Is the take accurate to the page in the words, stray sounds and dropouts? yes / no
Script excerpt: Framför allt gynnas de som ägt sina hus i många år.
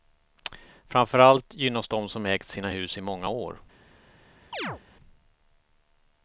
no